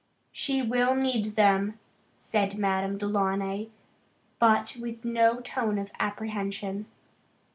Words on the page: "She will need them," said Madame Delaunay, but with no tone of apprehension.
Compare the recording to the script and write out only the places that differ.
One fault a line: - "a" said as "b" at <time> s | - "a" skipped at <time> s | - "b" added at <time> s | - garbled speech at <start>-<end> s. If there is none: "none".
none